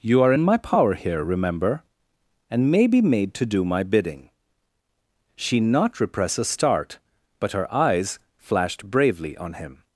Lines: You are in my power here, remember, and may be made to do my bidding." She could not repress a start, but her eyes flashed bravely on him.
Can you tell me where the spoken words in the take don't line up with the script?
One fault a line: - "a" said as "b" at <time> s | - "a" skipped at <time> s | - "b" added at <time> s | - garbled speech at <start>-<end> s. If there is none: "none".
- "could" skipped at 5.6 s